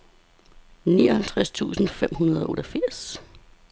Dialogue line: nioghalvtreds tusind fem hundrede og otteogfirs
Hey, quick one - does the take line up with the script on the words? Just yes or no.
yes